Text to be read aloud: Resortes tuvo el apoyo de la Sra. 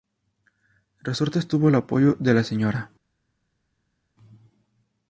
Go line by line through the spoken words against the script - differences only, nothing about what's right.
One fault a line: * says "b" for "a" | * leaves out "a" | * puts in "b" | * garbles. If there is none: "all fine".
all fine